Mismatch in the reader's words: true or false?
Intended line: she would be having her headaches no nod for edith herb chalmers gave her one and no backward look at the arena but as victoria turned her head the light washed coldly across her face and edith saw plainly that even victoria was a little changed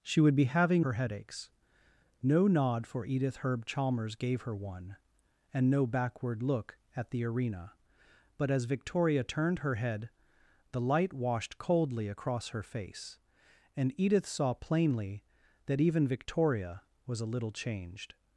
false